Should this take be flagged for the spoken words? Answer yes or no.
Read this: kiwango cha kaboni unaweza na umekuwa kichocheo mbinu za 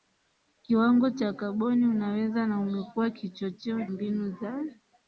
no